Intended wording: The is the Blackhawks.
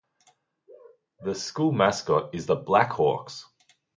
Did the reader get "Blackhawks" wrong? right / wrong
right